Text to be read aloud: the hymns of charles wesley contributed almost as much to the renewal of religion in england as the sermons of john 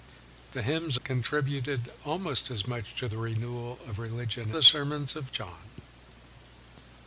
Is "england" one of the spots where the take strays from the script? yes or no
yes